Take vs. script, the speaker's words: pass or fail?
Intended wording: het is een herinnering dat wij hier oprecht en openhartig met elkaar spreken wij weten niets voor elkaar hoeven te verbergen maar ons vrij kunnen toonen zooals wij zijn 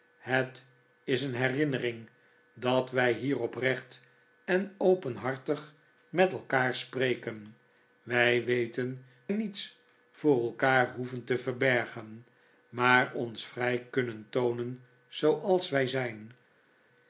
pass